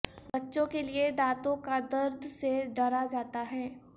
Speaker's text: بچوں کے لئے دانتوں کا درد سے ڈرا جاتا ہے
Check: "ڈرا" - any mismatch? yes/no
no